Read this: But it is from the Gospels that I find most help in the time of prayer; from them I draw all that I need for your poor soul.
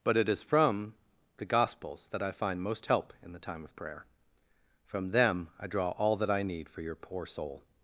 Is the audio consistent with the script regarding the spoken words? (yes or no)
yes